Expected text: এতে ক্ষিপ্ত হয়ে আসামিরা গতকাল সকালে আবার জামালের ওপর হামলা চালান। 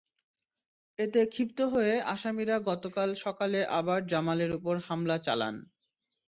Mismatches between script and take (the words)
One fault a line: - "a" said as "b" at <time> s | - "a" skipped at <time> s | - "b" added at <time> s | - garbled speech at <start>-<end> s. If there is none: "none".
none